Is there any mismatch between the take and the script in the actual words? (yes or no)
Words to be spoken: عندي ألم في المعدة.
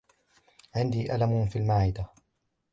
no